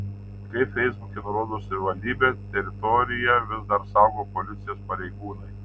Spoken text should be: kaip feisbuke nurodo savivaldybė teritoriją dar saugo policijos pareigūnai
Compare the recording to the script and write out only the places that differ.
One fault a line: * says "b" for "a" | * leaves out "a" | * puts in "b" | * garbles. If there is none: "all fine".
* puts in "vis"